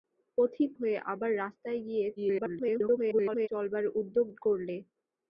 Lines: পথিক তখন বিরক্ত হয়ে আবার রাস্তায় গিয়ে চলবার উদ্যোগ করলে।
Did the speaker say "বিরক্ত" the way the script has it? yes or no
no